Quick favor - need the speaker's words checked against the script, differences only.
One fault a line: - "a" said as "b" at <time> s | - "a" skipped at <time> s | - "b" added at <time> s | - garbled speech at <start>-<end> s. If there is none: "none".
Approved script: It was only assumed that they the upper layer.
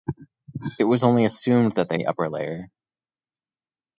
none